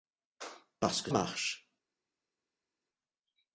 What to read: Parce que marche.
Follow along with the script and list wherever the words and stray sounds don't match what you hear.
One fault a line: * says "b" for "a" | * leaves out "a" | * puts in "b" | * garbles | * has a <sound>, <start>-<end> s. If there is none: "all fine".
all fine